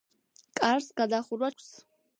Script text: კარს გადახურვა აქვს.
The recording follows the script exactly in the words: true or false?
true